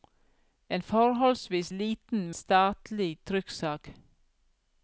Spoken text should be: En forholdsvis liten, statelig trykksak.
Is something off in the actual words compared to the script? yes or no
no